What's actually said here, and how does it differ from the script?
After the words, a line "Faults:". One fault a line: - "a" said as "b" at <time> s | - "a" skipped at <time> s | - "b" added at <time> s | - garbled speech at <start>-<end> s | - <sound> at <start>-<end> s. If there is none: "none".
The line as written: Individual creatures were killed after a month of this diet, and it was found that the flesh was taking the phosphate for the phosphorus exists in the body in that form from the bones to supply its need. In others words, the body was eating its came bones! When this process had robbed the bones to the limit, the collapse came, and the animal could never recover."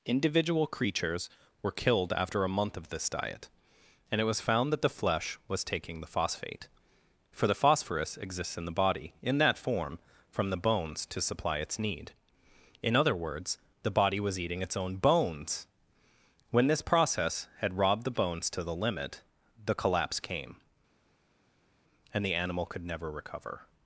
Individual creatures were killed after a month of this diet, and it was found that the flesh was taking the phosphate for the phosphorus exists in the body in that form from the bones to supply its need. In other words, the body was eating its own bones! When this process had robbed the bones to the limit, the collapse came, and the animal could never recover."
Faults:
- "others" said as "other" at 12.9 s
- "came" said as "own" at 14.8 s